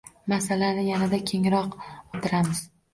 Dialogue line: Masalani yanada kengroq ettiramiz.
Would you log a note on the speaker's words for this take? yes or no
no